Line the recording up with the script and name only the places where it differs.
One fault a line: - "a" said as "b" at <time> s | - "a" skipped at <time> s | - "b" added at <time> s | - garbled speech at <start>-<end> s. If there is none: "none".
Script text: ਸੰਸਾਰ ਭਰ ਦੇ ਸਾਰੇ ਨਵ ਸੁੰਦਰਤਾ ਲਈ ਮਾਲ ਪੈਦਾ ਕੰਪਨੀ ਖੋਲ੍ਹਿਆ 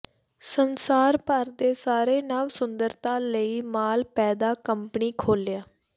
none